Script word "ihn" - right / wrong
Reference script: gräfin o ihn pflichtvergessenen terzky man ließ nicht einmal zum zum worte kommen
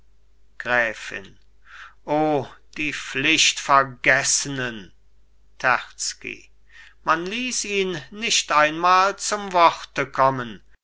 wrong